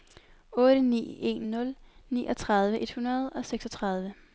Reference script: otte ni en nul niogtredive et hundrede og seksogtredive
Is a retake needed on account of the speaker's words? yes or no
no